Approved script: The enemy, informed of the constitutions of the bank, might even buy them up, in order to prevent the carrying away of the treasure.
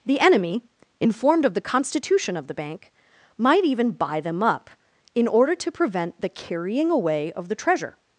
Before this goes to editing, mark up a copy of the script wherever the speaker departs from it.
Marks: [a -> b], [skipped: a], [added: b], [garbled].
The enemy, informed of the [constitutions -> constitution] of the bank, might even buy them up, in order to prevent the carrying away of the treasure.